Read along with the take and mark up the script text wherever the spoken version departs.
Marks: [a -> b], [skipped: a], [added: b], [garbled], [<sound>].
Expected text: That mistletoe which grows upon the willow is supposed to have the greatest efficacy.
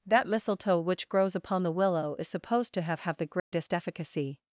That mistletoe which grows upon the willow is supposed to have [added: have] the greatest [dropout] efficacy.